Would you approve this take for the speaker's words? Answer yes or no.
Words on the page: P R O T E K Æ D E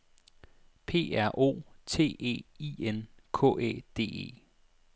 no